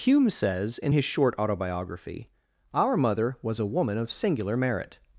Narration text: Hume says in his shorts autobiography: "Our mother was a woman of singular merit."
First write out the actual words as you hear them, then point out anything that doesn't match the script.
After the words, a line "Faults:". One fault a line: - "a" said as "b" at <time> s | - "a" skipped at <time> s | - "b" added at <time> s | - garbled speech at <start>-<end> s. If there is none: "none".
Hume says in his short autobiography: "Our mother was a woman of singular merit."
Faults:
- "shorts" said as "short" at 1.0 s